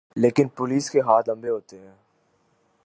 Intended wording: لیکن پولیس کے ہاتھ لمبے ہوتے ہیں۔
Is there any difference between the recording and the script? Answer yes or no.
no